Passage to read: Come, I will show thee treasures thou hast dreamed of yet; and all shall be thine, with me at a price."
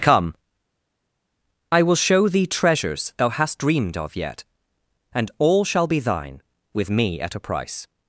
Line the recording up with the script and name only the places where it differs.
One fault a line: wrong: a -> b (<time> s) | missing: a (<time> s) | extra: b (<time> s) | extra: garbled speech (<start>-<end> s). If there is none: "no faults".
no faults